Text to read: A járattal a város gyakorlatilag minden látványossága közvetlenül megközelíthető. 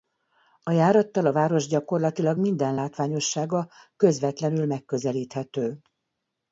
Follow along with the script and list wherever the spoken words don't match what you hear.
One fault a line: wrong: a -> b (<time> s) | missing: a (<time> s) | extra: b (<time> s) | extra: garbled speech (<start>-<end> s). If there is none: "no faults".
no faults